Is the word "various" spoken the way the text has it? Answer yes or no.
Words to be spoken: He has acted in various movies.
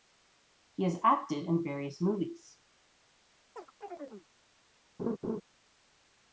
yes